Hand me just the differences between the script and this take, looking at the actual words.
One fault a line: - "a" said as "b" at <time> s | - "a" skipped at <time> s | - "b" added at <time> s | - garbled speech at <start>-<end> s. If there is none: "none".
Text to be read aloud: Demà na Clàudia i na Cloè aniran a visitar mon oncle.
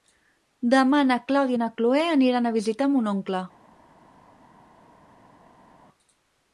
none